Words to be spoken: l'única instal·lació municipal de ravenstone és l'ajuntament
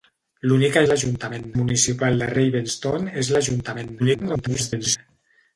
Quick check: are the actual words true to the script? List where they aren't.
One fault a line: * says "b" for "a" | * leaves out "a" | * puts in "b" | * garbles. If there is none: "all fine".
* says "l'ajuntament" for "instal·lació"
* garbles